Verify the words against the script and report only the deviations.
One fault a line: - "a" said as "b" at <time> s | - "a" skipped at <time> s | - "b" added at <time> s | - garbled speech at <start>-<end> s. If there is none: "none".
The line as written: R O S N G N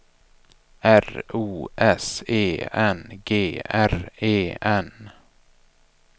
- "E" added at 2.3 s
- "R E" added at 3.7 s